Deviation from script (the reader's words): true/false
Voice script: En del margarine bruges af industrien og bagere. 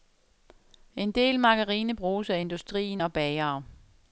false